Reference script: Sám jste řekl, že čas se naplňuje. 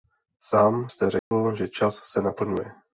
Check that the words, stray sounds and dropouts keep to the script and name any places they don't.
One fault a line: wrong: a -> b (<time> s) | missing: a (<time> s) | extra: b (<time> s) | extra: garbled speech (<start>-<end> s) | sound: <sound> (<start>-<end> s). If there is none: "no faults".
sound: dropout (1.2-1.3 s)